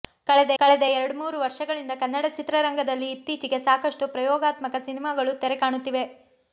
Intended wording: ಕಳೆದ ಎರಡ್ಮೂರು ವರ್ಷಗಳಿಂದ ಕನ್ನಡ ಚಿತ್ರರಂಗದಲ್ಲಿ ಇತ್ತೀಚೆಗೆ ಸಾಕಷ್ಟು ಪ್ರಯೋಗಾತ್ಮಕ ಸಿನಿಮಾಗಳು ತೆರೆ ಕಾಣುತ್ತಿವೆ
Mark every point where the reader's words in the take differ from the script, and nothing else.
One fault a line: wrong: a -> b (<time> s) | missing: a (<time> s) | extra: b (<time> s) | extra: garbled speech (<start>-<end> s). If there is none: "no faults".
extra: ಕಳೆದ (0.6 s)